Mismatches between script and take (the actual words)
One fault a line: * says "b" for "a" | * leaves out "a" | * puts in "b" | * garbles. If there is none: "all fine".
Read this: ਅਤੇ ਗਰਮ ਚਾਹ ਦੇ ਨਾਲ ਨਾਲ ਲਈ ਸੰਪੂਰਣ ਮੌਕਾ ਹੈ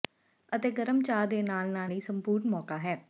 all fine